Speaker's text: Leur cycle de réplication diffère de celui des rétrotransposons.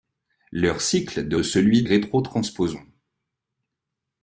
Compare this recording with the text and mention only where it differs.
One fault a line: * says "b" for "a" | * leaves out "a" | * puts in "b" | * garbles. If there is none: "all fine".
* leaves out "réplication diffère"
* leaves out "des"